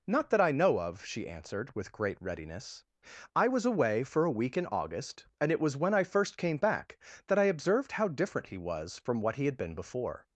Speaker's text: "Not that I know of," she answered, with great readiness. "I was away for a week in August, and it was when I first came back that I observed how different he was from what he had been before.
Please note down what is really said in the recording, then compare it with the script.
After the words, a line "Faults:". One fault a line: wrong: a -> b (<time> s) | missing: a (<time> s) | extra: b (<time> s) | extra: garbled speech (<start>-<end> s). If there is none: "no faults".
"Not that I know of," she answered, with great readiness. "I was away for a week in August, and it was when I first came back that I observed how different he was from what he had been before.
Faults:
no faults